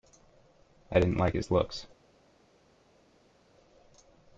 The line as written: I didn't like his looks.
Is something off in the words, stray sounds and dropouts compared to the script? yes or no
no